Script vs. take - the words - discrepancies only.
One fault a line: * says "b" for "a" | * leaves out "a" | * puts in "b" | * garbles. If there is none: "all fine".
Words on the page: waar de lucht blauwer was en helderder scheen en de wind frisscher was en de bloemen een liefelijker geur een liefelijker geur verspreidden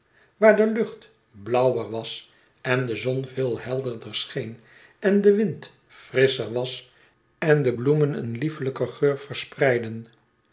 * puts in "de zon veel"
* leaves out "een liefelijker geur"